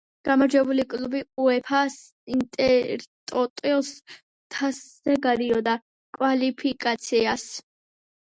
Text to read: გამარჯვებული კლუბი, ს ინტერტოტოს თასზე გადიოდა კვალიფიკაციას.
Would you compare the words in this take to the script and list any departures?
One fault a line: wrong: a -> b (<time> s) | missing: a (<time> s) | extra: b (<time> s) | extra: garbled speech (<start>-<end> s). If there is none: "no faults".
extra: უეფა (1.4 s)